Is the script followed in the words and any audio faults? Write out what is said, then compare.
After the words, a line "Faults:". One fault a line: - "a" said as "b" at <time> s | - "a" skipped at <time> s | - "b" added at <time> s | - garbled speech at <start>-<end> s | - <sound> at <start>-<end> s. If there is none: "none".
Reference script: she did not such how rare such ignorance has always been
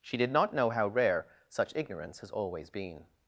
she did not know how rare such ignorance has always been
Faults:
- "such" said as "know" at 0.5 s